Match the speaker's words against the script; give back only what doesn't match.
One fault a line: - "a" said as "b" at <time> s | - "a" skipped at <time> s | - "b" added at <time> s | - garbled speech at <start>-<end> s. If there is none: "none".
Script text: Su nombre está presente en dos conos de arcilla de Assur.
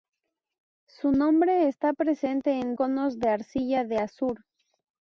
- "dos" skipped at 2.7 s